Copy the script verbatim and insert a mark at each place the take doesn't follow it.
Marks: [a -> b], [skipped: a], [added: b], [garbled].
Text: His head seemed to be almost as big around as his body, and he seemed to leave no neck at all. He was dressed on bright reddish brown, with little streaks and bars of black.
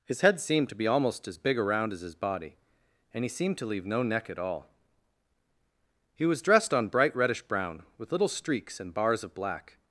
His head seemed to be almost as big around as his body, and he seemed to leave no neck at all. He was dressed on bright reddish brown, with little streaks and bars of black.